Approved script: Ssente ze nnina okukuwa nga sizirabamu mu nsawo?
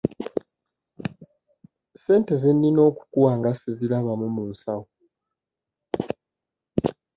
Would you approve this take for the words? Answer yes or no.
yes